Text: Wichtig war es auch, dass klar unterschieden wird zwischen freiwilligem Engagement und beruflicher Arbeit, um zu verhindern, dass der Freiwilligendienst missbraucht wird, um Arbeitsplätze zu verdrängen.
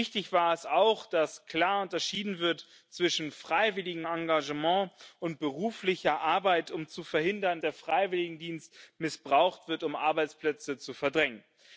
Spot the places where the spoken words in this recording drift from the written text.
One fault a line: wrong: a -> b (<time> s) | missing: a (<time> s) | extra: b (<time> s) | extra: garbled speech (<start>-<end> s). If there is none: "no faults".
missing: dass (7.6 s)